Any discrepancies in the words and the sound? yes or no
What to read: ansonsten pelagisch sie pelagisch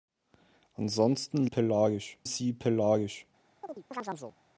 yes